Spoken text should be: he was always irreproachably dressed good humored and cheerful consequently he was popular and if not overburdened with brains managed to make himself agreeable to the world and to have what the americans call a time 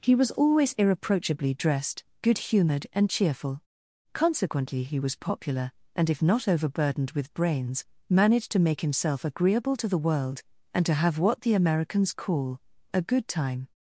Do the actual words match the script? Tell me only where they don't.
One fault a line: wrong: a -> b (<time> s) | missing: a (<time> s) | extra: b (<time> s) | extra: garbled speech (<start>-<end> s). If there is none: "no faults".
extra: good (13.0 s)